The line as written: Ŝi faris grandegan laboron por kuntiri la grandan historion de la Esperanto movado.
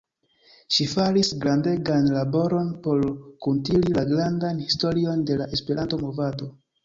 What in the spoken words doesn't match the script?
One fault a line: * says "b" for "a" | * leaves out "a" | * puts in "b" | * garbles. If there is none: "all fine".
all fine